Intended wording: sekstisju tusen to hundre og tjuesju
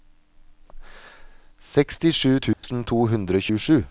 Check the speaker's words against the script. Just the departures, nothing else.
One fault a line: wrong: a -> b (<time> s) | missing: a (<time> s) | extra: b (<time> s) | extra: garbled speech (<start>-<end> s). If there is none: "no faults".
no faults